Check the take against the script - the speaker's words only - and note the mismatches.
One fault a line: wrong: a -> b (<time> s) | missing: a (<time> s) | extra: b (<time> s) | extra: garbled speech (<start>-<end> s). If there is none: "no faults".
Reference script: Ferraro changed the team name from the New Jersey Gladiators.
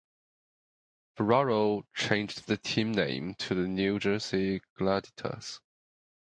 wrong: from -> to (3.3 s)